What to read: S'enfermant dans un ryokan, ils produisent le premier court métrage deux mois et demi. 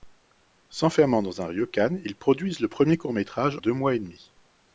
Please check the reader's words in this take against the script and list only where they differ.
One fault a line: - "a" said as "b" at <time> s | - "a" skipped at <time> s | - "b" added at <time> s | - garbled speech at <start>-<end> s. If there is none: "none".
none